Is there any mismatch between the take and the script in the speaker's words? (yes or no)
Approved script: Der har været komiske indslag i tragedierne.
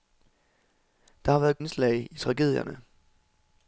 yes